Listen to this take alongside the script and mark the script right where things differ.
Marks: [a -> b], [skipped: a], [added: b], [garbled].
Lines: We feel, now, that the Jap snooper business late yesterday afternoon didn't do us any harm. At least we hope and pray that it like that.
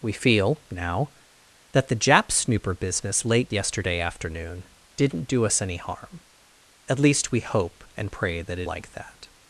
We feel, now, that the Jap snooper business late yesterday afternoon didn't do us any harm. At least we hope and pray that it like that.